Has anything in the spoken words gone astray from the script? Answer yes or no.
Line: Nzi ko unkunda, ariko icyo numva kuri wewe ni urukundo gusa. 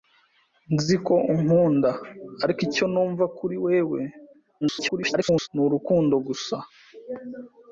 yes